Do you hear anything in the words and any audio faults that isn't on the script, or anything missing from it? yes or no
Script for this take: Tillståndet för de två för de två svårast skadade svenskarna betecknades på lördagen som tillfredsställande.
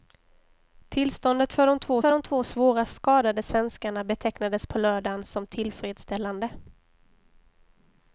no